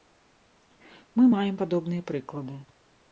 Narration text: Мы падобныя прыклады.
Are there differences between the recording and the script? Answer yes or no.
yes